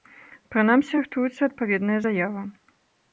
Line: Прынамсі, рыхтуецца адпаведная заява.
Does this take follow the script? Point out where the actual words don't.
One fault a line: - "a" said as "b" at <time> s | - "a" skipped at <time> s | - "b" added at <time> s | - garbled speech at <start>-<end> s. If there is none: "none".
none